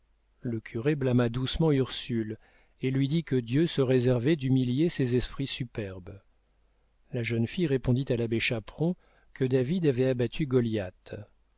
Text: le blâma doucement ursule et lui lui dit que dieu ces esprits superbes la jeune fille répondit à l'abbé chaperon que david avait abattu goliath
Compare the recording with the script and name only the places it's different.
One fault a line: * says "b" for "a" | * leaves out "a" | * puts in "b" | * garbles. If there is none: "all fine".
* puts in "curé"
* leaves out "lui"
* puts in "se réservait d'humilier"